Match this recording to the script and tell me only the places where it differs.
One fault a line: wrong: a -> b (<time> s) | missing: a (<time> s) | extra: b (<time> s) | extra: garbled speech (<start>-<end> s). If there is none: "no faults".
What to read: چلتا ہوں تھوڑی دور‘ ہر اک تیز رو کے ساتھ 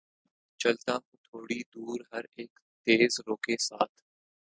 no faults